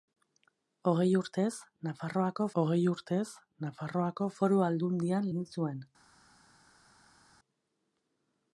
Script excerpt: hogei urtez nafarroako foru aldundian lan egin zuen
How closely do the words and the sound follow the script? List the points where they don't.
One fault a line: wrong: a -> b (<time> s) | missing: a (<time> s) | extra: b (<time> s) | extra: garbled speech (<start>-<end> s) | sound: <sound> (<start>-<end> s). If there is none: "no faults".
extra: hogei urtez nafarroako (2.6 s)
missing: lan (5.3 s)